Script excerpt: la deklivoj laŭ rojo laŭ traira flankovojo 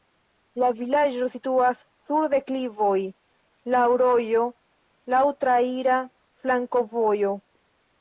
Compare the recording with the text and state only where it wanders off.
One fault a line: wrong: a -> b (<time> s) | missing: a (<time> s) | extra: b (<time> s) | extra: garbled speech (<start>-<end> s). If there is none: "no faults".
extra: vilaĝo situas sur (0.8 s)